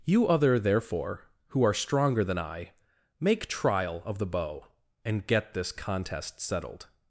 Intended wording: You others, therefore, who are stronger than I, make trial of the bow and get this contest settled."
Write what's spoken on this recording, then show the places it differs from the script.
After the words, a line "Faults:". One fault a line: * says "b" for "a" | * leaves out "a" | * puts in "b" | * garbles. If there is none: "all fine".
You other, therefore, who are stronger than I, make trial of the bow and get this contest settled."
Faults:
* says "other" for "others"